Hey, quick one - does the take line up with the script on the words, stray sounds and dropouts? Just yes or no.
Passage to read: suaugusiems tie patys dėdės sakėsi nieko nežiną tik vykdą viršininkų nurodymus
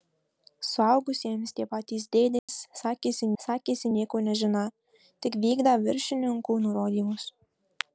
no